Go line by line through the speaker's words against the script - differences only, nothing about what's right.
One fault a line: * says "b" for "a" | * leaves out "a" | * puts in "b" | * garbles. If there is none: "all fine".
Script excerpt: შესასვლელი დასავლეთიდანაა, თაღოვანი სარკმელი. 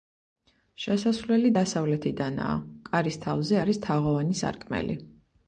* puts in "კარის თავზე არის"